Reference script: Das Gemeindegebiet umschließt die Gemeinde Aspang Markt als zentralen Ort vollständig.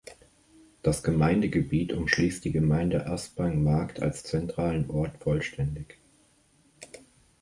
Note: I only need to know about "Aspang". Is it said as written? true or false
true